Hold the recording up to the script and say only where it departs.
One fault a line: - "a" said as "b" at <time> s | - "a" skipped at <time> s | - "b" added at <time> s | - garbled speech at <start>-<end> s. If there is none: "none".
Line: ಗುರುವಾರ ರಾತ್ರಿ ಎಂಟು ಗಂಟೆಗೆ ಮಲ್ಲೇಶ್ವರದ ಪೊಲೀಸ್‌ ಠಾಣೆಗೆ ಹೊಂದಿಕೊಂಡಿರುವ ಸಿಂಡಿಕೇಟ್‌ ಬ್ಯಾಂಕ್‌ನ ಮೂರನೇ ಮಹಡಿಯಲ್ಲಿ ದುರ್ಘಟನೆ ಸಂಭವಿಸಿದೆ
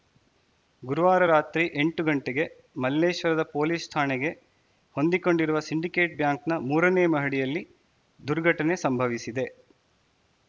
none